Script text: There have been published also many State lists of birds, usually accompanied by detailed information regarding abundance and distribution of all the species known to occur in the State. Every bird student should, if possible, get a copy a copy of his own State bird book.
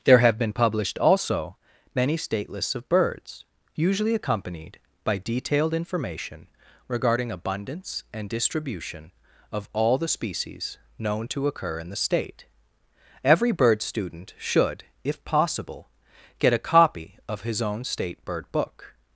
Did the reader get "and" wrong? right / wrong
right